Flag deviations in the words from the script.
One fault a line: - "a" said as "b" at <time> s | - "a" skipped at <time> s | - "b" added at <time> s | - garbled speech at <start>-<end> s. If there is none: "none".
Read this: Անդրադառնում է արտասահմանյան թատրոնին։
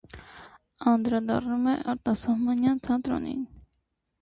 none